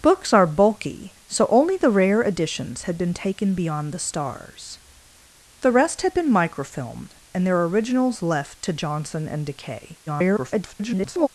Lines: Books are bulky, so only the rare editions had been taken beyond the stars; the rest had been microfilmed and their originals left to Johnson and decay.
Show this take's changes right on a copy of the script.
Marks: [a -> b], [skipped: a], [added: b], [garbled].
Books are bulky, so only the rare editions had been taken beyond the stars; the rest had been microfilmed and their originals left to Johnson and decay. [garbled]